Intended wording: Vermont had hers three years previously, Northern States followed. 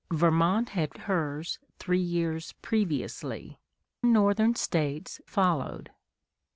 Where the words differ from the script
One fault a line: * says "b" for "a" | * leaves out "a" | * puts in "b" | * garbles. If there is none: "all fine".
all fine